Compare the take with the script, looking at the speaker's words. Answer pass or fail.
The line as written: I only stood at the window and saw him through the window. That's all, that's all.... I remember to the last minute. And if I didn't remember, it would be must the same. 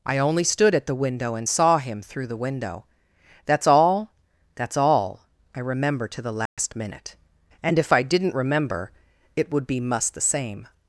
pass